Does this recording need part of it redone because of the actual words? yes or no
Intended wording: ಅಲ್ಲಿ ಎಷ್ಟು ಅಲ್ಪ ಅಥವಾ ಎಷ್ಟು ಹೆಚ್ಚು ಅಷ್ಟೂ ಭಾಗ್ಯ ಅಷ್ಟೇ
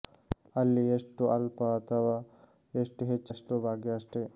no